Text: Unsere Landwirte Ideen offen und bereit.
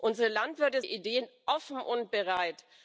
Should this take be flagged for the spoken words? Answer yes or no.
no